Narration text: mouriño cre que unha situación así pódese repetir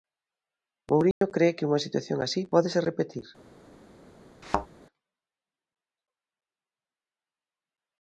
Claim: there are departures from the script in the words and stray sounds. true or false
true